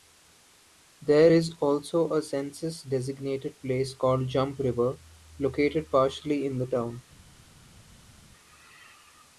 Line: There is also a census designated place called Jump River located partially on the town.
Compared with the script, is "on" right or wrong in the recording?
wrong